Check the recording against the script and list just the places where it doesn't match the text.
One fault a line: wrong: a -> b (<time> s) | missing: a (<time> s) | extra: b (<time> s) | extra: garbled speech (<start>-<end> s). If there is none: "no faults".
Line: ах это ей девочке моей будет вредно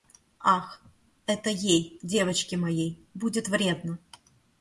no faults